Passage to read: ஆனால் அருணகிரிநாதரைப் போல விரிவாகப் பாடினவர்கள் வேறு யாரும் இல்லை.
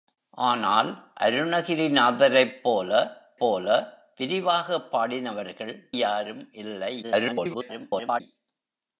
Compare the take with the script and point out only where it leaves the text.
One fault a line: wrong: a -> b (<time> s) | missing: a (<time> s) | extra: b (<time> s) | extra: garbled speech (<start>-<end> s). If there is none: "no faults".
extra: போல (3.4 s)
missing: வேறு (5.7 s)
extra: garbled speech (7.0-8.2 s)